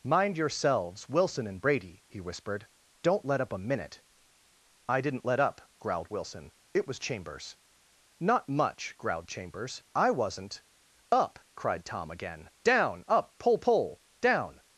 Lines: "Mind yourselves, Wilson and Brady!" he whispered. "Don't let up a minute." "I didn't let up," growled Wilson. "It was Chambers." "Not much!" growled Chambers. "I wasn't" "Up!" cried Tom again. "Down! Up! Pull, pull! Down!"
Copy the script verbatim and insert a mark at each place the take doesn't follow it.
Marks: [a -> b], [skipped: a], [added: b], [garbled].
"Mind yourselves, Wilson and Brady!" he whispered. "Don't let up a minute." "I didn't let up," growled Wilson. "It was Chambers." "Not much!" growled Chambers. "I wasn't" "Up!" cried Tom again. "Down! Up! Pull, pull! Down!"